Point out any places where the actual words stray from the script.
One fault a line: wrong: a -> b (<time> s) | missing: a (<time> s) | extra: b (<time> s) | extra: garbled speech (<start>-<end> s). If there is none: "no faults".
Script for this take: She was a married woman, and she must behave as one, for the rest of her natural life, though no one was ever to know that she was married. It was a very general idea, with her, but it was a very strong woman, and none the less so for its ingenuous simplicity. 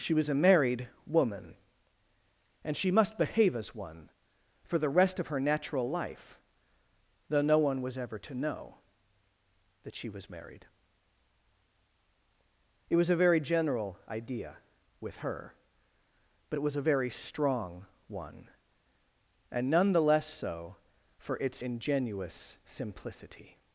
wrong: woman -> one (18.1 s)